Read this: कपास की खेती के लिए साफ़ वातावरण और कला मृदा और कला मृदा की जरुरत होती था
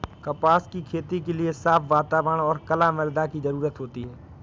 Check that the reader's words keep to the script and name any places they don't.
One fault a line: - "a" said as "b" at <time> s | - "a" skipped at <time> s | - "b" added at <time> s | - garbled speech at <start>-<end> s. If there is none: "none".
- "और कला मृदा" skipped at 3.3 s
- "था" said as "है" at 4.0 s